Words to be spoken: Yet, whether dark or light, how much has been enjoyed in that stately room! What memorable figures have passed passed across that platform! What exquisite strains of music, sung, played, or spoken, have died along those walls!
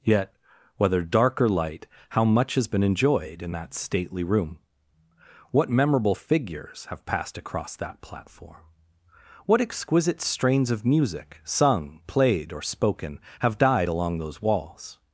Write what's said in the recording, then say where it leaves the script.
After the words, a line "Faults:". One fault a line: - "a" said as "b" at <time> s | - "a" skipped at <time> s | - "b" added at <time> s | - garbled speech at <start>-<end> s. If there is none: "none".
Yet, whether dark or light, how much has been enjoyed in that stately room! What memorable figures have passed across that platform! What exquisite strains of music, sung, played, or spoken, have died along those walls!
Faults:
- "passed" skipped at 7.4 s